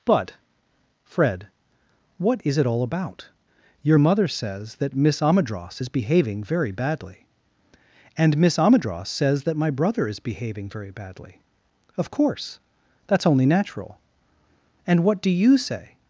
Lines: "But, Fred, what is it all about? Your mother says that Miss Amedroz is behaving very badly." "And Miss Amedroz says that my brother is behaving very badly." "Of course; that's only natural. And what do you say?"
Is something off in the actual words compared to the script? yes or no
no